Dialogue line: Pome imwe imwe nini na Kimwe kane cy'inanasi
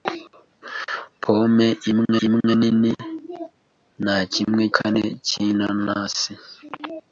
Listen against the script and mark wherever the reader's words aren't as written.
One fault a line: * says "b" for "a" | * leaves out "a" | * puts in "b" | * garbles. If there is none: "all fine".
all fine